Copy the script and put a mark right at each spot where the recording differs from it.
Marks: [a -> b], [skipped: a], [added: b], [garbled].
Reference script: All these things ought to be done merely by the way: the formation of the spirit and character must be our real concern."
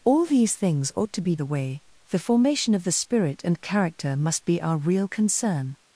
All these things ought to be [skipped: done merely by] the way: the formation of the spirit and character must be our real concern."